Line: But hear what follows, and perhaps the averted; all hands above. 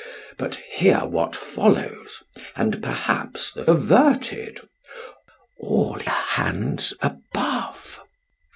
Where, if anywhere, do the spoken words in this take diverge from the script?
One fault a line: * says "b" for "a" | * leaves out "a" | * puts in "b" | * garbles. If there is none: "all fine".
all fine